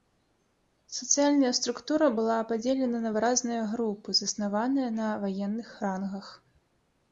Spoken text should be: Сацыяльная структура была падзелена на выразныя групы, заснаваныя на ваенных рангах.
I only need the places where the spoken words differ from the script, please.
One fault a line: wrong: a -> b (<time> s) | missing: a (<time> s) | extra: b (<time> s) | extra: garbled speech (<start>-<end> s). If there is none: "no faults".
no faults